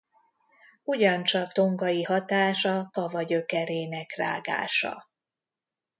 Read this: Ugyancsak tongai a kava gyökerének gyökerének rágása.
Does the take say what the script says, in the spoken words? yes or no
no